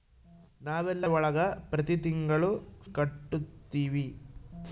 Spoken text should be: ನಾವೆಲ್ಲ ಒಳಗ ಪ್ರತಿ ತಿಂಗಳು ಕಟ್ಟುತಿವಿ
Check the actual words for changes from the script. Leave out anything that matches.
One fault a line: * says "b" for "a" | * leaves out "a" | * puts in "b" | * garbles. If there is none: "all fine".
all fine